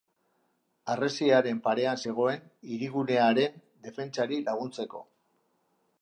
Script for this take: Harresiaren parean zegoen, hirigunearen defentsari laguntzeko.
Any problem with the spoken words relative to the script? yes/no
no